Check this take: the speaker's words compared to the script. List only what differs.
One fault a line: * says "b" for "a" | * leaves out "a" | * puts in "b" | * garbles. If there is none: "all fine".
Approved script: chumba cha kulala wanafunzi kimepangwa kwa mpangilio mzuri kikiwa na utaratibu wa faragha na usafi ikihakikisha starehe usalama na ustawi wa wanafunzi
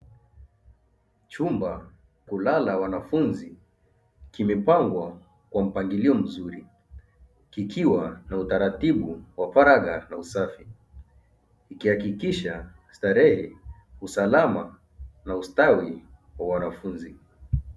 * leaves out "cha"